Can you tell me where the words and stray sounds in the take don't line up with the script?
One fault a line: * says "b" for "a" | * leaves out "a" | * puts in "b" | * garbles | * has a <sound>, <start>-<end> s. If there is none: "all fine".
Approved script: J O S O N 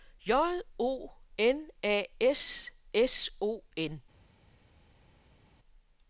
* puts in "N A S"